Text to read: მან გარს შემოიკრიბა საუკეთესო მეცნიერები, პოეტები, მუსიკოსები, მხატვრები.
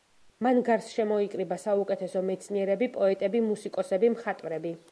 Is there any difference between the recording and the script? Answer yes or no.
no